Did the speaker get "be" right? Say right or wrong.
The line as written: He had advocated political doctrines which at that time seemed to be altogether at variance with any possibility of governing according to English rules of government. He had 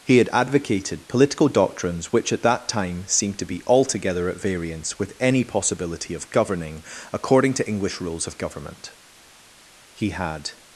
right